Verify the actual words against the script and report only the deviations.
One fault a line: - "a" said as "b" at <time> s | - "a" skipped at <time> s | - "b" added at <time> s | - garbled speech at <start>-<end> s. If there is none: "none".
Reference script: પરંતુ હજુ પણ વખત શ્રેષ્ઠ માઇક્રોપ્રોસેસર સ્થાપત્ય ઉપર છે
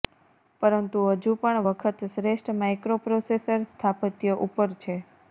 none